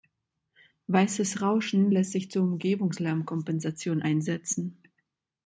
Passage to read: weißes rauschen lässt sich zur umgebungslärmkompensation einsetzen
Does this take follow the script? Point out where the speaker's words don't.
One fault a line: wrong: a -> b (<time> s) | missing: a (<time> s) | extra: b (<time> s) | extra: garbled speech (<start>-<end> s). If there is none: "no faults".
no faults